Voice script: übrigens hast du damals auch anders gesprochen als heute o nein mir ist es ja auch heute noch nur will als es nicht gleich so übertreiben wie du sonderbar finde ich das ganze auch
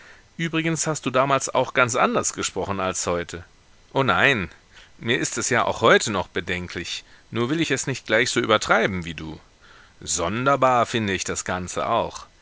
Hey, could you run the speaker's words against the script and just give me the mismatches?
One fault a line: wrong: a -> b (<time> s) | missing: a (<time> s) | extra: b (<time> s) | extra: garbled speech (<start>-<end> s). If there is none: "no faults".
extra: ganz (1.8 s)
extra: bedenklich (6.3 s)
wrong: als -> ich (7.6 s)